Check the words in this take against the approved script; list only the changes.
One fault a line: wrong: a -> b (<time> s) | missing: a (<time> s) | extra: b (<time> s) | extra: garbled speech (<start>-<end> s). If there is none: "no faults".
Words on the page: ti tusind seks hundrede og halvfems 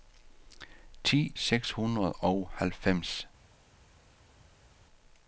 missing: tusind (1.4 s)